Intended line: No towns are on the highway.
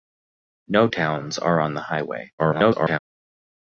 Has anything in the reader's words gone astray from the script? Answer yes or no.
yes